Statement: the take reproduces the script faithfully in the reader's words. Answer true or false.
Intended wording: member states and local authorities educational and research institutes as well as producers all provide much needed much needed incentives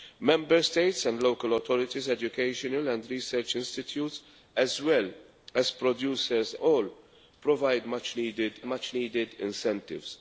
true